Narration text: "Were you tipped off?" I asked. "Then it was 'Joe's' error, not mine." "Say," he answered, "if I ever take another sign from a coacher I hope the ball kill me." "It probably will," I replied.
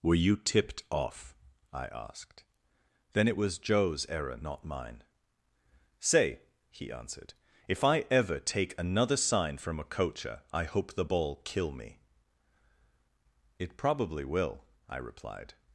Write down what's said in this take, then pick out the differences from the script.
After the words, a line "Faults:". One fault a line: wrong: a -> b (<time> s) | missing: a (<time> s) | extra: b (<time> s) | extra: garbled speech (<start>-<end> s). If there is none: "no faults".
"Were you tipped off?" I asked. "Then it was 'Joe's' error, not mine." "Say," he answered, "if I ever take another sign from a coacher I hope the ball kill me." "It probably will," I replied.
Faults:
no faults